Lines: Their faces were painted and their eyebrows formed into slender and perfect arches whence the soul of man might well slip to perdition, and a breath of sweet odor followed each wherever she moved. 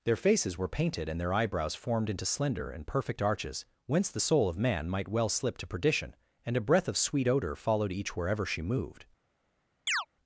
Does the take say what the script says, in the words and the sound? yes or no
no